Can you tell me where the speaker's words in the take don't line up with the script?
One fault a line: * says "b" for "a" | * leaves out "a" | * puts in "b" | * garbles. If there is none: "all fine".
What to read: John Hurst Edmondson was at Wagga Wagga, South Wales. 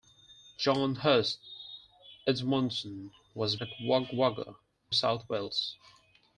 all fine